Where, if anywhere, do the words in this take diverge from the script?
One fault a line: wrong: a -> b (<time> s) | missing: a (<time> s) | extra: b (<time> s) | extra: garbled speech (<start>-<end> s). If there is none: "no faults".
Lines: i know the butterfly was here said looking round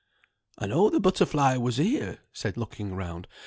no faults